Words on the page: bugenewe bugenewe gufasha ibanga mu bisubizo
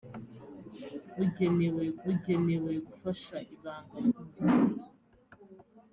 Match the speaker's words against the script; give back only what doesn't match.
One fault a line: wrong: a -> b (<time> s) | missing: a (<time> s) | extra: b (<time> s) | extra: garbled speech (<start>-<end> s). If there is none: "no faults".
no faults